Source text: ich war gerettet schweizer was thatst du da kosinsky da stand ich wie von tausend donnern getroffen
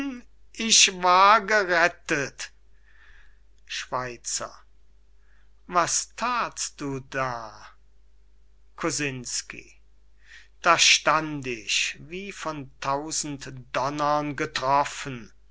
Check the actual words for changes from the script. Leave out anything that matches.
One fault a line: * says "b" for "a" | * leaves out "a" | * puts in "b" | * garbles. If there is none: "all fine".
all fine